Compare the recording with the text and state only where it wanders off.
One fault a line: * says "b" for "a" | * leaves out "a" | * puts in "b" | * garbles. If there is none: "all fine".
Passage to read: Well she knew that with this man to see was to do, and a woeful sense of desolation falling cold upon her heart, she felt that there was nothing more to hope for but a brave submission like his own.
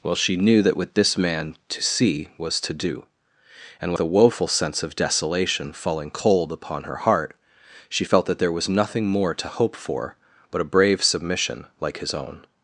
all fine